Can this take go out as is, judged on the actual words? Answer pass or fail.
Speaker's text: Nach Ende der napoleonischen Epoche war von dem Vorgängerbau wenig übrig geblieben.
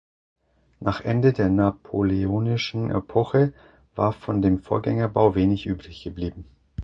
pass